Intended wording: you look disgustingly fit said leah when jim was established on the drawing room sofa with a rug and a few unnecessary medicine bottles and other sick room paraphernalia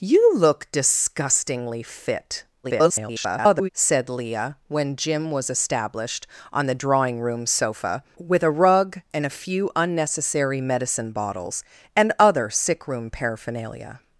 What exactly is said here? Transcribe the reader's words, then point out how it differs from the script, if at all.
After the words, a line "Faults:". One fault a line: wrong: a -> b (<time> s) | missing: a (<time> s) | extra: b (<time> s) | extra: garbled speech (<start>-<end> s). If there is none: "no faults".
you look disgustingly fit [garbled] said leah when jim was established on the drawing room sofa with a rug and a few unnecessary medicine bottles and other sick room paraphernalia
Faults:
extra: garbled speech (2.6-3.7 s)